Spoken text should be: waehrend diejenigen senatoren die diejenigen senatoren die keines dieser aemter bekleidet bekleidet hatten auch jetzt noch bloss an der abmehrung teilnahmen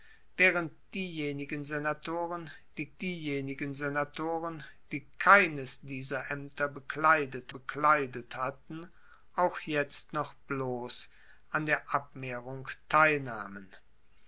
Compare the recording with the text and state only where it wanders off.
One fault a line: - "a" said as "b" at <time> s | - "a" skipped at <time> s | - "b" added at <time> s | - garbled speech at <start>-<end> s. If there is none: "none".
none